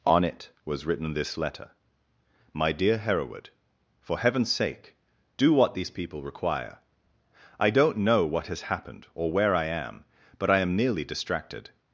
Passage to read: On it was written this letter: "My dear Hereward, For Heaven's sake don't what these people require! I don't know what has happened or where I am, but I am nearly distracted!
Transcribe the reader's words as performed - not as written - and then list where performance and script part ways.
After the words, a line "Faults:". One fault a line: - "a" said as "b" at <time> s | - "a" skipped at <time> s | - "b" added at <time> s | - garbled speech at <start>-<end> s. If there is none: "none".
On it was written this letter: "My dear Hereward, For Heaven's sake do what these people require! I don't know what has happened or where I am, but I am nearly distracted!
Faults:
- "don't" said as "do" at 5.4 s